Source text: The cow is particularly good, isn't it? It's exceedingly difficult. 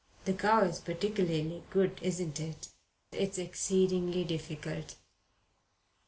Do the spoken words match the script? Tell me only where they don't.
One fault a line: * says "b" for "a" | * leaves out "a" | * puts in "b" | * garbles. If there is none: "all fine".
all fine